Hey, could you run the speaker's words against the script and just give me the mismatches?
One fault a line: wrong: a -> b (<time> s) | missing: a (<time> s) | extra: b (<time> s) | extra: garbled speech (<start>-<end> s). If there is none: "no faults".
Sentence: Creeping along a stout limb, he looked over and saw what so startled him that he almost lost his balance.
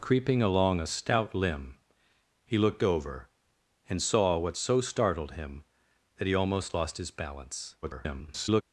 extra: garbled speech (7.8-8.6 s)